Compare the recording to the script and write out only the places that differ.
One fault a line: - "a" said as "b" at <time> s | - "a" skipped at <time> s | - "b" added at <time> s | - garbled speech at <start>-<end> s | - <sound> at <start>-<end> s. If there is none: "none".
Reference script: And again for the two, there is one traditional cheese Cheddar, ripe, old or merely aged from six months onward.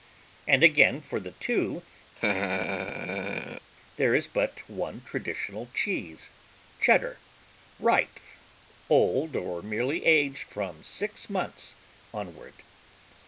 - laugh at 2.1-3.7 s
- "but" added at 4.3 s